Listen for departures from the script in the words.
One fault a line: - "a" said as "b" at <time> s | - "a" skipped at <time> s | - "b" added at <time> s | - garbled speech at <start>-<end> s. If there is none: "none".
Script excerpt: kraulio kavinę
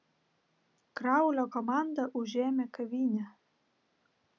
- "komanda užėmė" added at 1.6 s